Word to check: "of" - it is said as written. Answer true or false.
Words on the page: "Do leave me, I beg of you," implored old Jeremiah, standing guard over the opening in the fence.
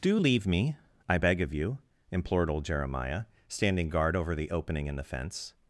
true